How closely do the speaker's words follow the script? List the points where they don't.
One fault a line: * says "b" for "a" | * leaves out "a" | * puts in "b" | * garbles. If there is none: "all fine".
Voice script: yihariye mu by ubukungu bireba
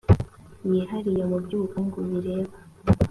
all fine